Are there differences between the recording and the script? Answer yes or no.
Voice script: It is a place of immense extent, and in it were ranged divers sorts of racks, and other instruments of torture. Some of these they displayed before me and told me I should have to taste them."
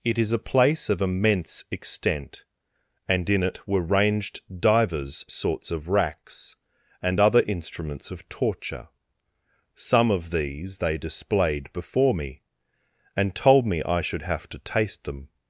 no